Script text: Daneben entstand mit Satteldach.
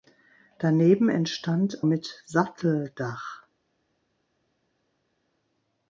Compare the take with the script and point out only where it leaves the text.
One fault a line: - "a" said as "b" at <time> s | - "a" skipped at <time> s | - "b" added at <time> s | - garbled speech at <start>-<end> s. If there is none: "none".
none